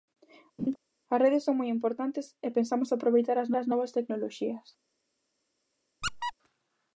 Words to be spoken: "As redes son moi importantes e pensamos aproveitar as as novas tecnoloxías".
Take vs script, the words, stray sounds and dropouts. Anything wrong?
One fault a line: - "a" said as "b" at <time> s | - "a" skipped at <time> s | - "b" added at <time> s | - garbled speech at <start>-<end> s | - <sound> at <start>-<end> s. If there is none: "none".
- laugh at 0.6-0.8 s
- squeak at 6.0-6.3 s